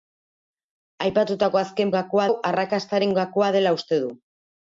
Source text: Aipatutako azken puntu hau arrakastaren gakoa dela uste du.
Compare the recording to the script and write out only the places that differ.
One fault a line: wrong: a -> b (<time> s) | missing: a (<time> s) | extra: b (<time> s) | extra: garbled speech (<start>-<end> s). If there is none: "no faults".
wrong: puntu -> gakoa (2.0 s)